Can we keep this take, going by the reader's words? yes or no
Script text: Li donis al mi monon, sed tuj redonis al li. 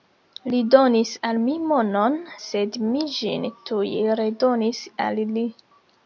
no